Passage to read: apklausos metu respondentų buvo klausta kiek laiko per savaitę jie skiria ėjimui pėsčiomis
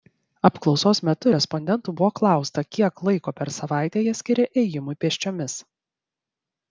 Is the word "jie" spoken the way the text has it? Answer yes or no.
yes